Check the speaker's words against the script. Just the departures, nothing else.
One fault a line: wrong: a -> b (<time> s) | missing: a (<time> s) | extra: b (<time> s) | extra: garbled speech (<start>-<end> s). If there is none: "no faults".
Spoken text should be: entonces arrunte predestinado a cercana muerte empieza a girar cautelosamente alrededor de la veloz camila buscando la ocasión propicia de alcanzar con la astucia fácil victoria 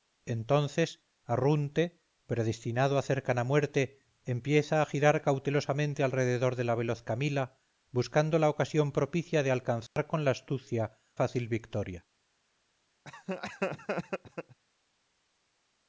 no faults